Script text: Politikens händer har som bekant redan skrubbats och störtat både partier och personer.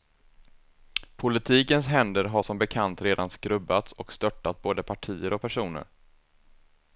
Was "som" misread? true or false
false